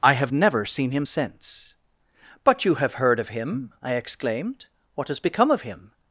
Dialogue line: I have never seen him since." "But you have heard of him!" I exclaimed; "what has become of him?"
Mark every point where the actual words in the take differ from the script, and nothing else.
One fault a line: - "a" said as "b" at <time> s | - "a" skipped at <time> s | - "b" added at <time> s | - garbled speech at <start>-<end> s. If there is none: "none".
none